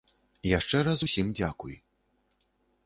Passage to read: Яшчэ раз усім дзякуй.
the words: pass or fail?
pass